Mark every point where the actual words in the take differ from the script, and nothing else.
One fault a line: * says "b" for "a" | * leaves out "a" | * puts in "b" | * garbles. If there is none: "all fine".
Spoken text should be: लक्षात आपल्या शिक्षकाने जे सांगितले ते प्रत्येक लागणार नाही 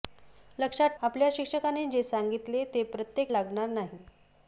all fine